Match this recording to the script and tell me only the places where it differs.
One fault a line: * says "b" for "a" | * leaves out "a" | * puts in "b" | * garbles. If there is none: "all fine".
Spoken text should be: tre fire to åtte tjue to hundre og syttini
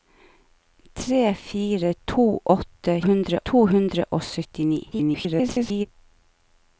* says "hundre" for "tjue"
* garbles